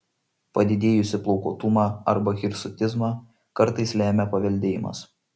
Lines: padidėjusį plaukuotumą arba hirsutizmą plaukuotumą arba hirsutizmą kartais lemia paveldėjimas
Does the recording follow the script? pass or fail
fail